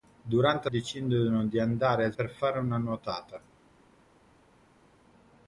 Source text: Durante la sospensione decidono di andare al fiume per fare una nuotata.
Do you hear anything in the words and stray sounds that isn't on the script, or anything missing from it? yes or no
yes